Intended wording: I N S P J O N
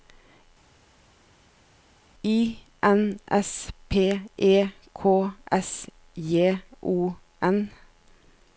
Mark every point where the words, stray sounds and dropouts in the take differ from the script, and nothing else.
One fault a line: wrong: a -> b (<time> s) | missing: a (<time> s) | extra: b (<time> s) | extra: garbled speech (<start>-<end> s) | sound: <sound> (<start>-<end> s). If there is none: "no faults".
extra: E K S (4.4 s)